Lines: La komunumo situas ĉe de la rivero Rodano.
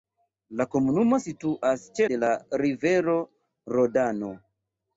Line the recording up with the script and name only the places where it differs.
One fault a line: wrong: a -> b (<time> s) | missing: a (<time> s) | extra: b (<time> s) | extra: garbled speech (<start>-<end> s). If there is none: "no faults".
no faults